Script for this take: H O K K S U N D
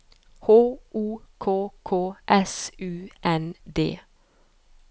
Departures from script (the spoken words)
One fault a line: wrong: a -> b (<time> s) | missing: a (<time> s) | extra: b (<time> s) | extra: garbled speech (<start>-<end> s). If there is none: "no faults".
no faults